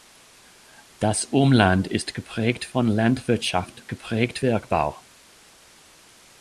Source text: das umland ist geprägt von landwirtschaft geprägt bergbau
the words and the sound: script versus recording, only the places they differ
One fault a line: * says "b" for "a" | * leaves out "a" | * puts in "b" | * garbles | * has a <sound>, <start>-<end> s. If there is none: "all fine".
all fine